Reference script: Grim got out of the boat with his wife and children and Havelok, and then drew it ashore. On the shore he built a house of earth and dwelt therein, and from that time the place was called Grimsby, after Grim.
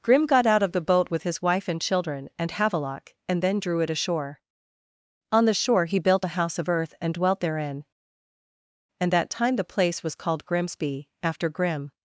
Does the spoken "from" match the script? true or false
false